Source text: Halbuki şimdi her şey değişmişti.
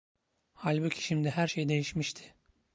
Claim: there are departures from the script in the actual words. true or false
false